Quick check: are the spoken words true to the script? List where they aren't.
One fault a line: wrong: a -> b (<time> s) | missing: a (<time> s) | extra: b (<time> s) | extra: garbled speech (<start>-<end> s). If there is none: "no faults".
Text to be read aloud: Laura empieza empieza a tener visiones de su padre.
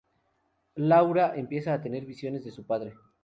missing: empieza (1.8 s)